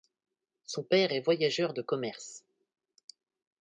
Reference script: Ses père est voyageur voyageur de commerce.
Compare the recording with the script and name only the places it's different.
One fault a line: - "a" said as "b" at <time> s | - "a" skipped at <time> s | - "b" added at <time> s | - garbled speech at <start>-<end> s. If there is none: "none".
- "Ses" said as "Son" at 0.6 s
- "voyageur" skipped at 1.8 s